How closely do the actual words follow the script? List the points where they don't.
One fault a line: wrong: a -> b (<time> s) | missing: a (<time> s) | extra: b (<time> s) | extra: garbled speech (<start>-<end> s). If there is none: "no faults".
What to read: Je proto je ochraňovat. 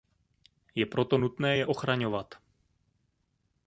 extra: nutné (1.1 s)